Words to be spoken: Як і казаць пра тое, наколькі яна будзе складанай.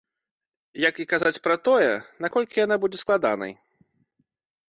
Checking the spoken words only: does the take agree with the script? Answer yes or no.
yes